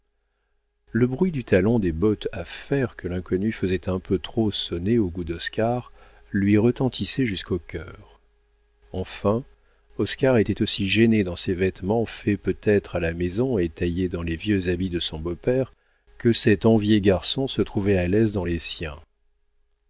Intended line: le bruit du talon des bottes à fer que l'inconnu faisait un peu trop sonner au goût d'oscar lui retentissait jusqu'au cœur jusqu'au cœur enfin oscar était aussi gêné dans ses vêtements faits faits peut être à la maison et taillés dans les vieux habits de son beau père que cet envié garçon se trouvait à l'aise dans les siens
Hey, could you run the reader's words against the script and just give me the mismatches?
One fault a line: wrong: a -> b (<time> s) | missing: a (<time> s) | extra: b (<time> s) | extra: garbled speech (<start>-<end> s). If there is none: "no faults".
missing: jusqu'au cœur (8.2 s)
missing: faits (12.4 s)